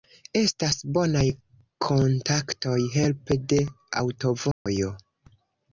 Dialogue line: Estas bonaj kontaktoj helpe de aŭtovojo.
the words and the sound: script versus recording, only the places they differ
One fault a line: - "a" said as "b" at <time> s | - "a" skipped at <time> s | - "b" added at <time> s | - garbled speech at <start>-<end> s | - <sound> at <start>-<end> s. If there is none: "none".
- dropout at 4.5-4.7 s